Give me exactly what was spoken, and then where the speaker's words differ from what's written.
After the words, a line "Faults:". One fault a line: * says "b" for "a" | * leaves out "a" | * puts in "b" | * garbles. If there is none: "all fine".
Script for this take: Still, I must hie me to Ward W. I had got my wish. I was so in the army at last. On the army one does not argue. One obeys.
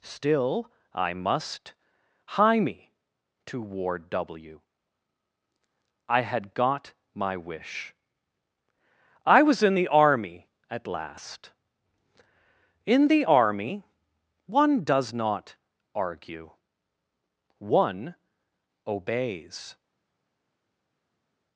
Still, I must hie me to Ward W. I had got my wish. I was in the army at last. In the army one does not argue. One obeys.
Faults:
* leaves out "so"
* says "In" for "On"